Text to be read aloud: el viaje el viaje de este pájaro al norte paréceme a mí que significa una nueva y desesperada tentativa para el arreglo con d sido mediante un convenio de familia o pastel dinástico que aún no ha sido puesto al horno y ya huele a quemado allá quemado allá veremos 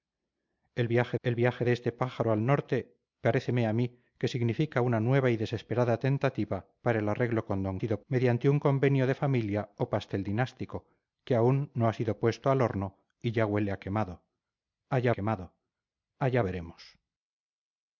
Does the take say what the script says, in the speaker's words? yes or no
yes